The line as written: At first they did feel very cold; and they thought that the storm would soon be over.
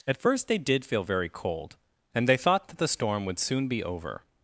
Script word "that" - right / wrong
right